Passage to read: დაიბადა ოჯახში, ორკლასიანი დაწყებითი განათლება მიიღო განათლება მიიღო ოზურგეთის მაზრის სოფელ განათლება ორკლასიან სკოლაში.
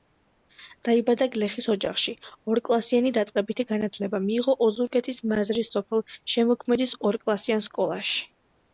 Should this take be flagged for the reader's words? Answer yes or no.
yes